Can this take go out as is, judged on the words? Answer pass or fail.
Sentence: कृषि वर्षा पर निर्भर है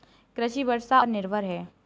pass